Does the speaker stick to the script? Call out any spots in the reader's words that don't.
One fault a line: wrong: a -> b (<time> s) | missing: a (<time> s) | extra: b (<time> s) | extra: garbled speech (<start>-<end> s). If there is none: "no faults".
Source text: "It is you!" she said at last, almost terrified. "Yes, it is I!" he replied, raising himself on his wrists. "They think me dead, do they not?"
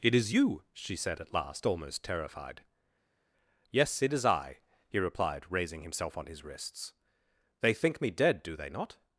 no faults